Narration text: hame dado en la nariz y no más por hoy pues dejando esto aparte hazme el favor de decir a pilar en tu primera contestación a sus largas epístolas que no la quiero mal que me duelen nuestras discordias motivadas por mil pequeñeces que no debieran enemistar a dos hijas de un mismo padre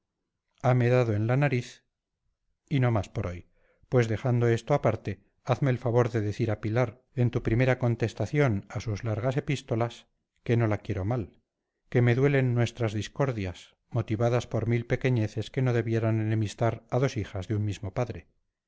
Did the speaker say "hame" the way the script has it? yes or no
yes